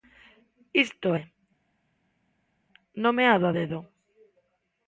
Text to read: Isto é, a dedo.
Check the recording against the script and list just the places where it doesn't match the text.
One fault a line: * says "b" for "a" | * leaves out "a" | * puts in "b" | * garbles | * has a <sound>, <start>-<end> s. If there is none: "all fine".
* puts in "nomeado"